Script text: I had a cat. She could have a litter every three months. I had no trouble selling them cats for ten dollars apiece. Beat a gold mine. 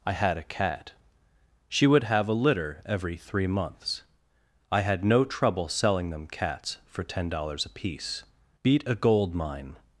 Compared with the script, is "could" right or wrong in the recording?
wrong